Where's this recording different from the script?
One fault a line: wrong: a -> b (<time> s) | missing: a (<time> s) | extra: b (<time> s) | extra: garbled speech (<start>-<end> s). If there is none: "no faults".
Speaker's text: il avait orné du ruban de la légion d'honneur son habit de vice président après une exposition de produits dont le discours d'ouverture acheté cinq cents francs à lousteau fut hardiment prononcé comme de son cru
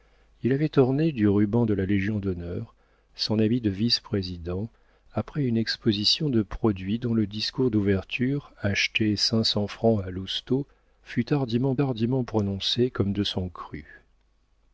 extra: hardiment (11.8 s)